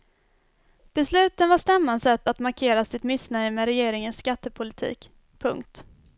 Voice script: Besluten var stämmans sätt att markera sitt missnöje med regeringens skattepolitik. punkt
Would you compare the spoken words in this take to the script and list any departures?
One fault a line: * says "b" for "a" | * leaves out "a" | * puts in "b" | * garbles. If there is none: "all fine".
all fine